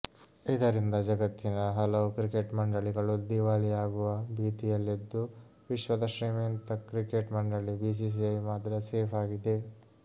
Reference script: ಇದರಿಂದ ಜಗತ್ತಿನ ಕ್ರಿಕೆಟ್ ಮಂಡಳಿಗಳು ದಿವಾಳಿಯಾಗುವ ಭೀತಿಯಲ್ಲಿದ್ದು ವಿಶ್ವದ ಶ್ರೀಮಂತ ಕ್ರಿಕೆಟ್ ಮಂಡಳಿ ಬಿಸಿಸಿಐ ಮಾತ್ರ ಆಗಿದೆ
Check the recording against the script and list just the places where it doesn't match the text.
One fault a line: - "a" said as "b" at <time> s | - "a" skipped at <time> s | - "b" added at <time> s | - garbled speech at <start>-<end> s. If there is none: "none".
- "ಹಲವು" added at 1.8 s
- "ಸೇಫ್" added at 8.9 s